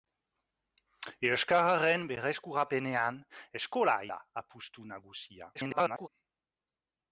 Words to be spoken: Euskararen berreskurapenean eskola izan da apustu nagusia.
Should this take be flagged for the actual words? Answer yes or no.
yes